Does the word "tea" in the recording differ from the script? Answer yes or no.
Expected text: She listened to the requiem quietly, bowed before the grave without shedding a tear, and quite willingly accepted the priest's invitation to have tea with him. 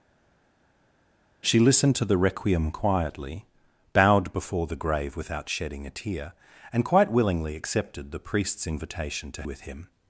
yes